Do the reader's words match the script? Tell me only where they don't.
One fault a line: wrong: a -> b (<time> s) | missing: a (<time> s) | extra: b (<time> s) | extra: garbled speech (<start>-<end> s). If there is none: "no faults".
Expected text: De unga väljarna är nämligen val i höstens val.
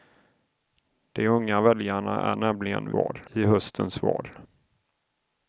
no faults